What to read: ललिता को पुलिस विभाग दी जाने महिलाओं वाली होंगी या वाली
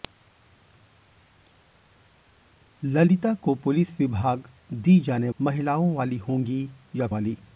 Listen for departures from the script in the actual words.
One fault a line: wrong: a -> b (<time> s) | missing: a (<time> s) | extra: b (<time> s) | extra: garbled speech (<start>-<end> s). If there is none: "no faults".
no faults